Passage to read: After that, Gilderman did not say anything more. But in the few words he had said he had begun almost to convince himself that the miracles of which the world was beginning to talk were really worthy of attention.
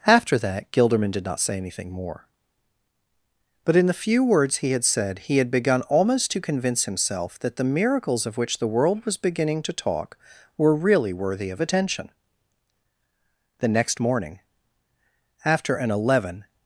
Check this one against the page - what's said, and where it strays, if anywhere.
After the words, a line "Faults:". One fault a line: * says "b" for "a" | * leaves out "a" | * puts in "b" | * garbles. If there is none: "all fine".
After that, Gilderman did not say anything more. But in the few words he had said he had begun almost to convince himself that the miracles of which the world was beginning to talk were really worthy of attention. The next morning, after an eleven
Faults:
* puts in "The next morning after an eleven"